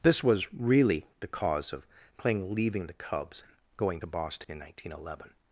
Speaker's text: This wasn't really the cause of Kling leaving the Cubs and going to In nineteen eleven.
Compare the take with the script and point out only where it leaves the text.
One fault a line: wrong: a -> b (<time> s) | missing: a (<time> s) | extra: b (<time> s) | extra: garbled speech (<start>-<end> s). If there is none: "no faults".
wrong: wasn't -> was (0.2 s)
extra: Boston (4.1 s)